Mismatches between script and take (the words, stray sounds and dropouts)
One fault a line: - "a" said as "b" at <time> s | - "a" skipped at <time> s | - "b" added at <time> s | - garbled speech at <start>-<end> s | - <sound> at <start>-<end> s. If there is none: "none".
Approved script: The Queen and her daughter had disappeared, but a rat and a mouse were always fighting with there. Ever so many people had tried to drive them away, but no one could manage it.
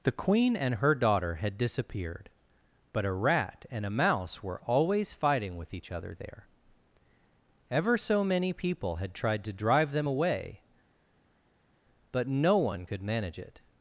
- "each other" added at 5.8 s